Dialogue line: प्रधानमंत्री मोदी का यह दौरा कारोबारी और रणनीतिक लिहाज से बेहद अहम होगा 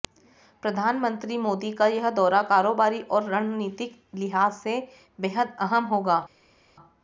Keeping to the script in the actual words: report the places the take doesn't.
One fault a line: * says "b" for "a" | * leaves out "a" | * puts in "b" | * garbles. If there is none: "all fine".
all fine